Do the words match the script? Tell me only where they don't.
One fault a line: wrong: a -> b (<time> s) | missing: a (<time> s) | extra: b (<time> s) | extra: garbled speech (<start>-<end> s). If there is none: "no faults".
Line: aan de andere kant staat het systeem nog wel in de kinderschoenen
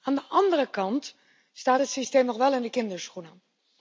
no faults